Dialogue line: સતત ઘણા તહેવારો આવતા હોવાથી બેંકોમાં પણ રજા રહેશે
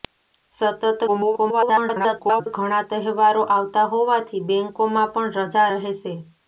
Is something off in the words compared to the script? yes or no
yes